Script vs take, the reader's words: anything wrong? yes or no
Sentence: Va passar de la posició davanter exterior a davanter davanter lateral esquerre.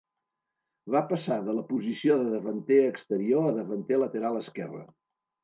yes